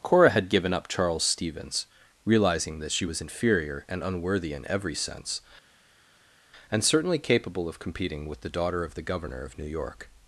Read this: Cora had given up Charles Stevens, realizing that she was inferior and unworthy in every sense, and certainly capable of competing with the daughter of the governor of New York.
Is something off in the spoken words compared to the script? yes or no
no